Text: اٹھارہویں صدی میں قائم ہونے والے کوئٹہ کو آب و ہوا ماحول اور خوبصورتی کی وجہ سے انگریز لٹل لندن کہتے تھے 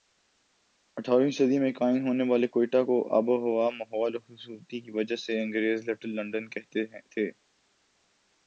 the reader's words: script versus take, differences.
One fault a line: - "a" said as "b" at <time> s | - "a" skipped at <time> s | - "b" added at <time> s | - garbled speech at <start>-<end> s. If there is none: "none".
none